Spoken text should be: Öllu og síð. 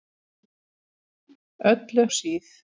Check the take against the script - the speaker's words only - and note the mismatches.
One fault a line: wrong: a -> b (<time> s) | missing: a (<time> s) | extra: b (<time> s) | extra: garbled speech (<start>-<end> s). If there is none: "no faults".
no faults